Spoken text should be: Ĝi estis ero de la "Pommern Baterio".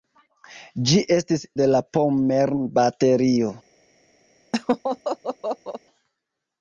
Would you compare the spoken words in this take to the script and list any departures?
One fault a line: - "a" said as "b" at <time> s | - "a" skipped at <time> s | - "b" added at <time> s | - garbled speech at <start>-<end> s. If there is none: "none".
- "ero" skipped at 1.4 s